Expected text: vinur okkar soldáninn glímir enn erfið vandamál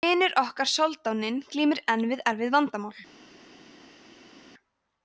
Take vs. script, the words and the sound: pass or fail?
fail